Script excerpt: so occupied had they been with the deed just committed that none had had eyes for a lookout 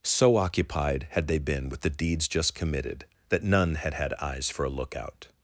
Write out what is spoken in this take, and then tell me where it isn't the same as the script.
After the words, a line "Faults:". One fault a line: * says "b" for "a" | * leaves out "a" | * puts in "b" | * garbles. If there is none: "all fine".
so occupied had they been with the deeds just committed that none had had eyes for a lookout
Faults:
* says "deeds" for "deed"